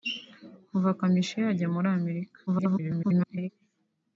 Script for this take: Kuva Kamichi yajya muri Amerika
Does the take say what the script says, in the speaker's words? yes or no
no